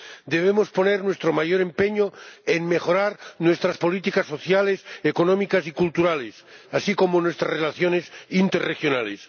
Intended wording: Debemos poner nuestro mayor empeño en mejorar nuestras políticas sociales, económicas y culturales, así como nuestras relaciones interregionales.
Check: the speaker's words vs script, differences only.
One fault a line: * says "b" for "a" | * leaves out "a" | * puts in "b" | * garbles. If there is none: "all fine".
all fine